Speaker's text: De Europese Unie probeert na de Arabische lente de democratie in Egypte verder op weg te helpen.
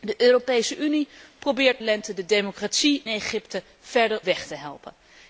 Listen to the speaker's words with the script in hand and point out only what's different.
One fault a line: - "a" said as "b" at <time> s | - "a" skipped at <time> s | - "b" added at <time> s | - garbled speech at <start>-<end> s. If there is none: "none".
- "na de Arabische" skipped at 1.8 s
- "in" skipped at 3.0 s
- "op" skipped at 4.2 s